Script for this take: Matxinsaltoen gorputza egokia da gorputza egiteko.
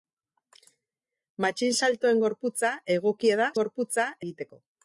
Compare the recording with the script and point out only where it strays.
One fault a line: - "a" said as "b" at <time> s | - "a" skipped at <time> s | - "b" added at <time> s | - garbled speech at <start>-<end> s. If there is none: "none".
none